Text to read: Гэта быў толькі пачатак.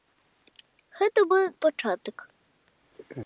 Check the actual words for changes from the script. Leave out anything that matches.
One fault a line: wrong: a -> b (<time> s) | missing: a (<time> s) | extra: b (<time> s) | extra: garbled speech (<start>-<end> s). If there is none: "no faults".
missing: толькі (1.4 s)